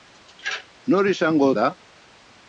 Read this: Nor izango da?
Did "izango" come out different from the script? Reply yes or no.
no